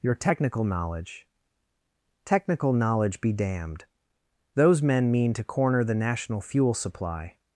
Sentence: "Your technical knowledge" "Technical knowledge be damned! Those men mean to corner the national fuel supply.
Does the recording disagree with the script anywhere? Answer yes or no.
no